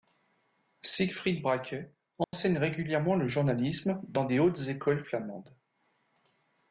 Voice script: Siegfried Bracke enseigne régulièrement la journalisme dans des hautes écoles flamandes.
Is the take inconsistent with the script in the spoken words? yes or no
yes